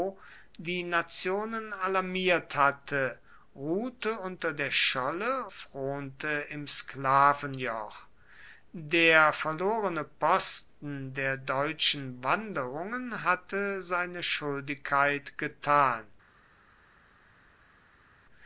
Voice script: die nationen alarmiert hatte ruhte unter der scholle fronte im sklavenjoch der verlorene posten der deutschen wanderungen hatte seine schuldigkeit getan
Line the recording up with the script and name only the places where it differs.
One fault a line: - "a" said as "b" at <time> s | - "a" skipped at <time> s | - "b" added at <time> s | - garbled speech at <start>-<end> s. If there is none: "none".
none